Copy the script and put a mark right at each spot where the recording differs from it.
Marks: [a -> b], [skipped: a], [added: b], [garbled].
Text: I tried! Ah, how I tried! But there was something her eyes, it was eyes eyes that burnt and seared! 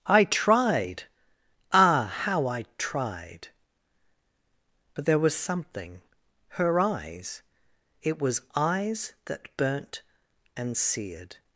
I tried! Ah, how I tried! But there was something her eyes, it was eyes [skipped: eyes] that burnt and seared!